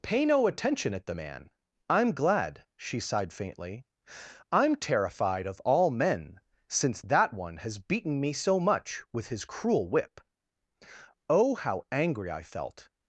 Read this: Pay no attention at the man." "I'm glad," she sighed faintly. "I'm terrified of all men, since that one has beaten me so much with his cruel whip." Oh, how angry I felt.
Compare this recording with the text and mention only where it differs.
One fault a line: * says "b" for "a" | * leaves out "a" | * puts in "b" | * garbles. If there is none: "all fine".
all fine